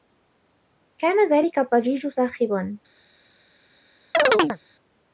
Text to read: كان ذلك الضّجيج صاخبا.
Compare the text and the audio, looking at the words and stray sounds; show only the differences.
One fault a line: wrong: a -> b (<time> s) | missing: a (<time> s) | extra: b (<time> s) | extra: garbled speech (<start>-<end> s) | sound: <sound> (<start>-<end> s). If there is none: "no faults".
sound: chirp (4.1-4.6 s)